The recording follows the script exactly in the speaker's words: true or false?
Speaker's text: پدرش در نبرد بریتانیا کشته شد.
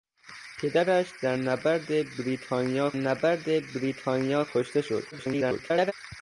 false